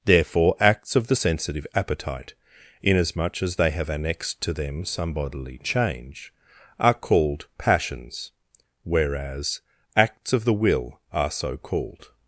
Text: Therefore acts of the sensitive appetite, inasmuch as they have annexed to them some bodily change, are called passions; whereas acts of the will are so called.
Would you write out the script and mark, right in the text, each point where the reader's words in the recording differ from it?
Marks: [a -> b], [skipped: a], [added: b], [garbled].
Therefore acts of the sensitive appetite, inasmuch as they have annexed to them some bodily change, are called passions; whereas acts of the will are so called.